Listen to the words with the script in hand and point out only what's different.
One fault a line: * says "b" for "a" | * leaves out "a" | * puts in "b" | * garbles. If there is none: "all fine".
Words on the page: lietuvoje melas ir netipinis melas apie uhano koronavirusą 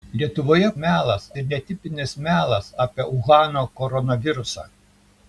all fine